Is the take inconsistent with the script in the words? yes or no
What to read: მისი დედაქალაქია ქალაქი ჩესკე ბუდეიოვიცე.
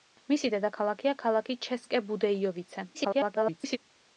yes